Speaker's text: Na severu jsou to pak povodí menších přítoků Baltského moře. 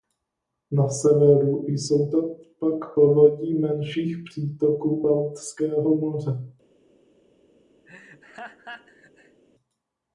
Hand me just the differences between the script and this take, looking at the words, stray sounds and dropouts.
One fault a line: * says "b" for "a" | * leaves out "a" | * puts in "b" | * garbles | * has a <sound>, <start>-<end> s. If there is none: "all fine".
* has a laugh, 7.9-9.4 s